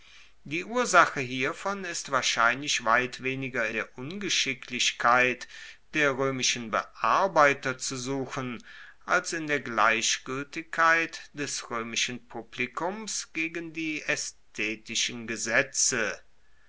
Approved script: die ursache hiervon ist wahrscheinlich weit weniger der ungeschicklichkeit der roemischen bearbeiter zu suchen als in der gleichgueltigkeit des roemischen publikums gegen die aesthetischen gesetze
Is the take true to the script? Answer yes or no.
yes